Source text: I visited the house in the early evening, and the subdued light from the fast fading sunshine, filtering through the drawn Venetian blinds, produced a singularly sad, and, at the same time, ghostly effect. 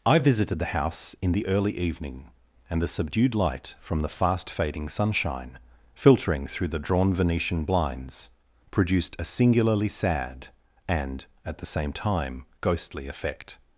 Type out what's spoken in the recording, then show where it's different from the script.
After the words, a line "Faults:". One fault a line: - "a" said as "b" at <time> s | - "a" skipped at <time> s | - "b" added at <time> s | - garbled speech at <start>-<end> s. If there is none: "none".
I visited the house in the early evening, and the subdued light from the fast fading sunshine, filtering through the drawn Venetian blinds, produced a singularly sad, and, at the same time, ghostly effect.
Faults:
none